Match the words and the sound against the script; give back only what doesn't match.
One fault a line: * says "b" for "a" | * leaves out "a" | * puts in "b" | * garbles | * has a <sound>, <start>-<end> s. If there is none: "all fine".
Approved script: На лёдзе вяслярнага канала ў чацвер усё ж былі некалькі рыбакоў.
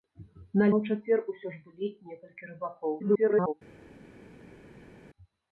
* leaves out "лёдзе вяслярнага канала"
* garbles